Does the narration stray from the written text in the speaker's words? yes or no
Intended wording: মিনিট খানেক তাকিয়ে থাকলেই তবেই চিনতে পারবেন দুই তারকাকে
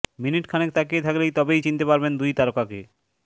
no